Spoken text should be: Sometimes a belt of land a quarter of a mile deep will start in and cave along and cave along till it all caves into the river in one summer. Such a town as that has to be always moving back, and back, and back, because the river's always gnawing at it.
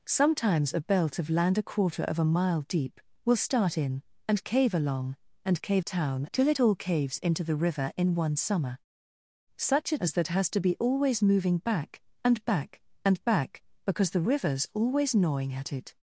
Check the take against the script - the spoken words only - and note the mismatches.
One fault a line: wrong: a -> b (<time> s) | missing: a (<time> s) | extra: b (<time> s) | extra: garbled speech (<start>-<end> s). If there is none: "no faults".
wrong: along -> town (5.8 s)
missing: town (10.0 s)